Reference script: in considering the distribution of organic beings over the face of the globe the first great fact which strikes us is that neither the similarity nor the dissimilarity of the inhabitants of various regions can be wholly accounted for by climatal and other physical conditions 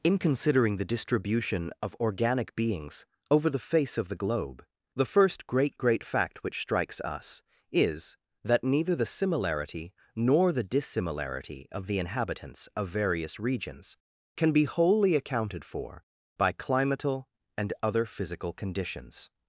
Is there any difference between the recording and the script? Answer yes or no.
yes